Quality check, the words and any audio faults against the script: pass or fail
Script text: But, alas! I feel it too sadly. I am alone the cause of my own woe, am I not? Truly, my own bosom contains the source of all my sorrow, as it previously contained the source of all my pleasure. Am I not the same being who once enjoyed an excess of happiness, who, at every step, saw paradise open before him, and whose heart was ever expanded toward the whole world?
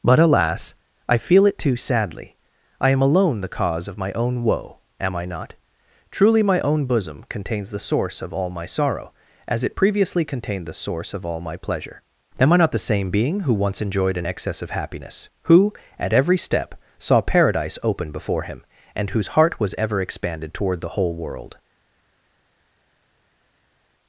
pass